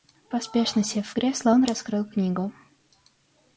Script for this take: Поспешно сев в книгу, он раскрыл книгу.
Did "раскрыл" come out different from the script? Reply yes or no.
no